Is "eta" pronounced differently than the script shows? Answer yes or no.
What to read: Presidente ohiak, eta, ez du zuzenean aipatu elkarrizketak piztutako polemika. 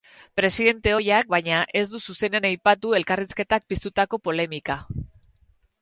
yes